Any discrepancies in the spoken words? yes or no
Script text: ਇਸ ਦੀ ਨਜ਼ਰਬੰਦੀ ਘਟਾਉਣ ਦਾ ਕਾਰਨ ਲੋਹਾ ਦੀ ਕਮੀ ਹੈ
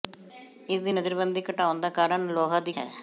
yes